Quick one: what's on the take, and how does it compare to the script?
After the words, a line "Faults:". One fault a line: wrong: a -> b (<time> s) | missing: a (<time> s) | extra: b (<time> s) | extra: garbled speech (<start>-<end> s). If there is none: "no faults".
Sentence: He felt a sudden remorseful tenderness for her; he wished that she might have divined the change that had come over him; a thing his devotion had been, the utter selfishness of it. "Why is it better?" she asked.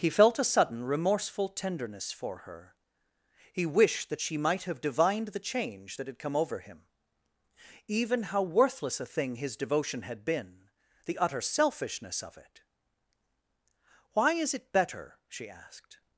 He felt a sudden remorseful tenderness for her; he wished that she might have divined the change that had come over him; even how worthless a thing his devotion had been, the utter selfishness of it. "Why is it better?" she asked.
Faults:
extra: even how worthless (7.9 s)